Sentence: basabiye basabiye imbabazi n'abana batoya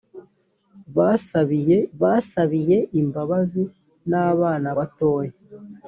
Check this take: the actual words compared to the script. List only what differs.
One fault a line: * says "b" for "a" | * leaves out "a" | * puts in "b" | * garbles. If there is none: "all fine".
all fine